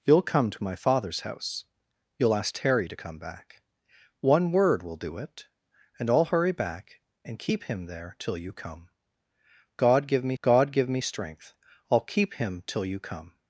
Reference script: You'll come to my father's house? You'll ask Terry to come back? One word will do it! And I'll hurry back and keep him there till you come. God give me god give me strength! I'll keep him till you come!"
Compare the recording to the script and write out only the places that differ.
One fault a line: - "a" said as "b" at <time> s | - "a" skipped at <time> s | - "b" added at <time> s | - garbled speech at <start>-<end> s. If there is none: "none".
none